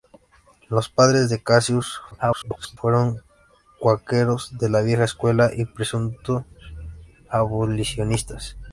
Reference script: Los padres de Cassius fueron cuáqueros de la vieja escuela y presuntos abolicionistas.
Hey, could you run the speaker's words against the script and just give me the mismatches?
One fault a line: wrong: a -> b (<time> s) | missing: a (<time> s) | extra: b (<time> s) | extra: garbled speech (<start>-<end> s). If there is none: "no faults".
extra: garbled speech (2.1-2.8 s)